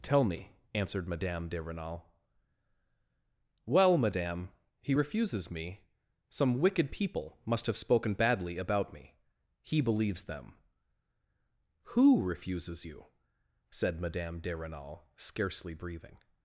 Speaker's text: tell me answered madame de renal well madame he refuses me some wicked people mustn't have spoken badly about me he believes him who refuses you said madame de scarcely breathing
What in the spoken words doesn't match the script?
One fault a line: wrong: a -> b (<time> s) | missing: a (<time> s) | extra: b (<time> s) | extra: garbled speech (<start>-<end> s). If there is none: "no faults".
wrong: mustn't -> must (7.4 s)
wrong: him -> them (10.2 s)
extra: renal (14.6 s)